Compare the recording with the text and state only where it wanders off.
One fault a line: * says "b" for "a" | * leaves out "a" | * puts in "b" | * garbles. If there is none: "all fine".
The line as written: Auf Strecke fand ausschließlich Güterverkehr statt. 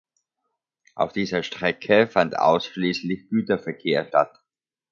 * puts in "dieser"